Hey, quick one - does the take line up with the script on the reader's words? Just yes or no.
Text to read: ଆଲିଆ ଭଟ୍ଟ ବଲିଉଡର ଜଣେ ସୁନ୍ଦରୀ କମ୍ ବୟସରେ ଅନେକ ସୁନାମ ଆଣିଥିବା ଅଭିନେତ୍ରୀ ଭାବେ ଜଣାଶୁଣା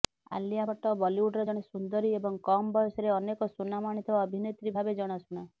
no